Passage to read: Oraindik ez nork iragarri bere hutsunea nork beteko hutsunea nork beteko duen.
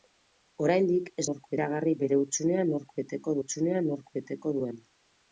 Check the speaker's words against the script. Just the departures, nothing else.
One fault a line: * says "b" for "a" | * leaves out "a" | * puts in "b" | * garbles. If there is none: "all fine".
all fine